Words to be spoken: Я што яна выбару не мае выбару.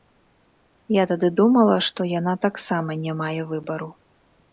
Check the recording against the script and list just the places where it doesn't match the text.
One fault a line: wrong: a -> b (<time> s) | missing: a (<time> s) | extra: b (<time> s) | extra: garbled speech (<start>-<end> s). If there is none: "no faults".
extra: тады думала (1.1 s)
wrong: выбару -> таксама (2.5 s)